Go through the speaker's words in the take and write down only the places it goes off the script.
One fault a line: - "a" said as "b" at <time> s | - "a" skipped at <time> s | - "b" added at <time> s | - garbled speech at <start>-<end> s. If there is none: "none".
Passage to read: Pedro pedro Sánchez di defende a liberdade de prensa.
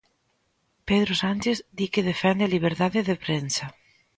- "pedro" skipped at 1.1 s
- "que" added at 1.9 s